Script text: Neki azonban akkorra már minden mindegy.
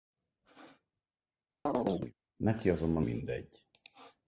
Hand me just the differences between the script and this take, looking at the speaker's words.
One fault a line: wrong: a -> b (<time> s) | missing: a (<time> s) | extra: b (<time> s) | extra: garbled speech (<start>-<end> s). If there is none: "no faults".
missing: akkorra már minden (3.0 s)